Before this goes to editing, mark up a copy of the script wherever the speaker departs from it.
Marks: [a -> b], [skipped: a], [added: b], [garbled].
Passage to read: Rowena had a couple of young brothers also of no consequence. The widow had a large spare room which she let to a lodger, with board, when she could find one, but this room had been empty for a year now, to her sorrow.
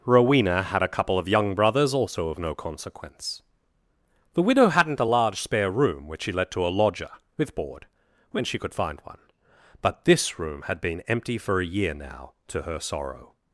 Rowena had a couple of young brothers also of no consequence. The widow [had -> hadn't] a large spare room which she let to a lodger, with board, when she could find one, but this room had been empty for a year now, to her sorrow.